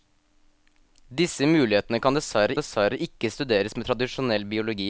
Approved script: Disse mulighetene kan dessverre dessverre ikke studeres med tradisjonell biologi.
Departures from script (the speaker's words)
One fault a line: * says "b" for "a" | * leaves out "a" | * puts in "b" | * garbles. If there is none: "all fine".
all fine